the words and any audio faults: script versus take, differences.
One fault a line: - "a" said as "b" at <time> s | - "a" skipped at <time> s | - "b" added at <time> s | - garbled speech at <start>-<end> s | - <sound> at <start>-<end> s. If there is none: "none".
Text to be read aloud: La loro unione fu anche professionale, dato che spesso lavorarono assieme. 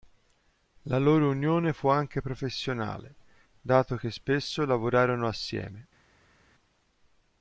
none